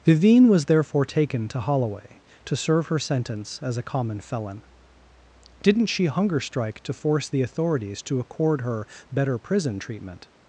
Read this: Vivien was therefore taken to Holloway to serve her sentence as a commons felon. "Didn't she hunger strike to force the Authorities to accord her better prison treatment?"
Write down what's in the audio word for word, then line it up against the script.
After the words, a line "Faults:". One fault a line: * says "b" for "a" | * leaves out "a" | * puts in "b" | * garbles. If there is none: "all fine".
Vivien was therefore taken to Holloway to serve her sentence as a common felon. "Didn't she hunger strike to force the Authorities to accord her better prison treatment?"
Faults:
* says "common" for "commons"